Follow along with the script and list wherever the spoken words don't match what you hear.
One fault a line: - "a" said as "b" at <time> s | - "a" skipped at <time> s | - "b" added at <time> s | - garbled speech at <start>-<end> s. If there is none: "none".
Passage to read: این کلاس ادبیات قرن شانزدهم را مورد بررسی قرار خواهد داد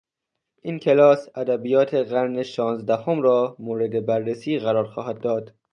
none